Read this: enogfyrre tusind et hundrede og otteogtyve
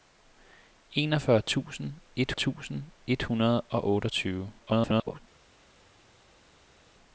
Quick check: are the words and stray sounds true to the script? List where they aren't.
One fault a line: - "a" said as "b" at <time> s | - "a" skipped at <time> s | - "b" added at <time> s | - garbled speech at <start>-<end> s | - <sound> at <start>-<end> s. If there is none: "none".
- "tusind et" added at 2.3 s
- garbled speech at 4.6-5.2 s